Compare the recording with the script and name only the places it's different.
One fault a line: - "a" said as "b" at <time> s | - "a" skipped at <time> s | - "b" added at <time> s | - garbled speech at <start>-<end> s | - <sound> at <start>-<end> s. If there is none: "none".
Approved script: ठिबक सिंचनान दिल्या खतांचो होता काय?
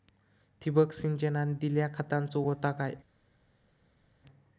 none